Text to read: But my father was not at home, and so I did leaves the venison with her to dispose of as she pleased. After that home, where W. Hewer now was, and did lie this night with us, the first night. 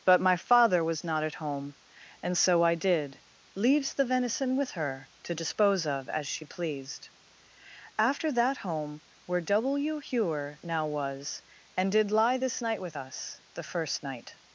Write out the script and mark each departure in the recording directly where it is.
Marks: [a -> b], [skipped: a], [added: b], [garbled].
But my father was not at home, and so I did leaves the venison with her to dispose of as she pleased. After that home, where W. Hewer now was, and did lie this night with us, the first night.